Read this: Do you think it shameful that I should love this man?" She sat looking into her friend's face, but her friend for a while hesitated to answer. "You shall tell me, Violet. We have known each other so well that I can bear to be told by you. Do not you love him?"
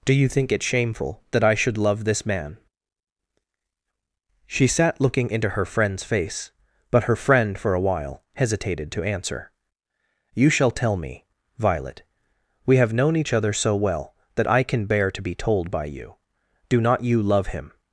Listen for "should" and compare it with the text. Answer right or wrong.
right